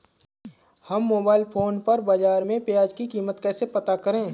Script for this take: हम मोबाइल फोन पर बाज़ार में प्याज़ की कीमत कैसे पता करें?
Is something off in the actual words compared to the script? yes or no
no